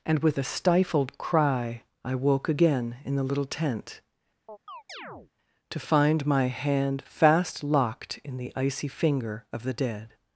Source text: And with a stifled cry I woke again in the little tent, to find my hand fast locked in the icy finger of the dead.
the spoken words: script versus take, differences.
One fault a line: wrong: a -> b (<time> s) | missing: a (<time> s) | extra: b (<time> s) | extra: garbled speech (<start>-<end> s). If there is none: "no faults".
no faults